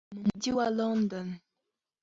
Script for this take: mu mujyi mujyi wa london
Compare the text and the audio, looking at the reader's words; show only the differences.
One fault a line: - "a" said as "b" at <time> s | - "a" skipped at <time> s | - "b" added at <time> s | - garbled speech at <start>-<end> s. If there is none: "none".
- "mujyi" skipped at 0.5 s